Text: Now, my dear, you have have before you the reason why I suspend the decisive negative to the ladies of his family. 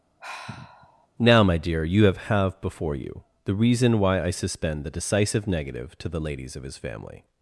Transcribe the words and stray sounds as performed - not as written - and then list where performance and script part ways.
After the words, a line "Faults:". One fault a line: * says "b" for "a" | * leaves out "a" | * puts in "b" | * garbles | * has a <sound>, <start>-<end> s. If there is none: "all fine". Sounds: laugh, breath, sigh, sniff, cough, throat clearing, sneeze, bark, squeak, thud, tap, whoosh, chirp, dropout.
Now, my dear, you have have before you the reason why I suspend the decisive negative to the ladies of his family.
Faults:
* has a sigh, 0.2-1.1 s